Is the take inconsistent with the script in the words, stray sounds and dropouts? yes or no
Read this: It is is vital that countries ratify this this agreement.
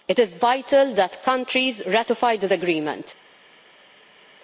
yes